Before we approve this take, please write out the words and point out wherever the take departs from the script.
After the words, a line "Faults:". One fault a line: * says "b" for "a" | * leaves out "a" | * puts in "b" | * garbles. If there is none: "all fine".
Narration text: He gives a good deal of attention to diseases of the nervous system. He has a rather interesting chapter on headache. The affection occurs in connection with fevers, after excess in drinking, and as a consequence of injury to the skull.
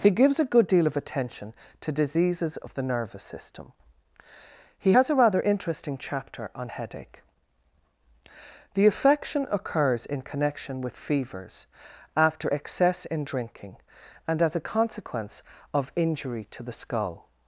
He gives a good deal of attention to diseases of the nervous system. He has a rather interesting chapter on headache. The affection occurs in connection with fevers, after excess in drinking, and as a consequence of injury to the skull.
Faults:
all fine